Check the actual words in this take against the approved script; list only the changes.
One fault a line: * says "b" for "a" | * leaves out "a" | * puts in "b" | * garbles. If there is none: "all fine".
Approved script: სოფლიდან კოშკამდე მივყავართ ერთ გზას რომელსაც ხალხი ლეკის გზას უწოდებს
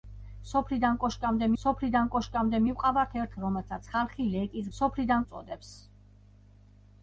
* puts in "სოფლიდან კოშკამდე"
* leaves out "გზას"
* says "სოფლიდან" for "გზას"